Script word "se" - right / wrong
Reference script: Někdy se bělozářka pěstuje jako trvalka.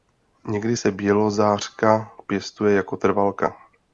right